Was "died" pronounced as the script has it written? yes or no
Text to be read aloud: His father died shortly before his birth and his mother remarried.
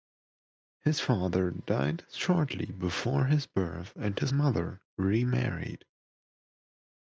yes